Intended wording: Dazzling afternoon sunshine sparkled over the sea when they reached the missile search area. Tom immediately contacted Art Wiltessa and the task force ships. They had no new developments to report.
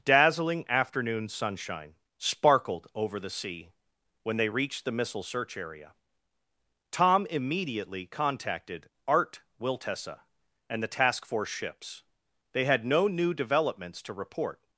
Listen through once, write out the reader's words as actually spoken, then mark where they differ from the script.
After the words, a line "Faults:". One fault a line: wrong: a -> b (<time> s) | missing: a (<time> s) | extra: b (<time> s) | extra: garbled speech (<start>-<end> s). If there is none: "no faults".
Dazzling afternoon sunshine sparkled over the sea when they reached the missile search area. Tom immediately contacted Art Wiltessa and the task force ships. They had no new developments to report.
Faults:
no faults